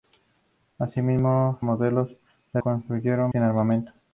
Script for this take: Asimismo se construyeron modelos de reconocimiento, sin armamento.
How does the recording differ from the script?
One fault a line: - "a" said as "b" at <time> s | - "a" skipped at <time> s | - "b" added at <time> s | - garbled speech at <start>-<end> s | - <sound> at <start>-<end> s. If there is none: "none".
- "se construyeron" skipped at 1.6 s
- "reconocimiento" said as "construyeron" at 2.6 s